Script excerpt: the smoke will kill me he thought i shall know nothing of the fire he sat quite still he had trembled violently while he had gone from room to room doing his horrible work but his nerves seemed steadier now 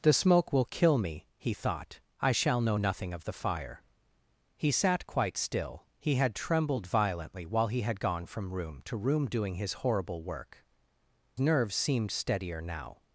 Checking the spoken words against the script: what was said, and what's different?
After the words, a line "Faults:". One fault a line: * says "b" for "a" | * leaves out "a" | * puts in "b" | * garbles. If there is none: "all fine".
the smoke will kill me he thought i shall know nothing of the fire he sat quite still he had trembled violently while he had gone from room to room doing his horrible work nerves seemed steadier now
Faults:
* leaves out "but his"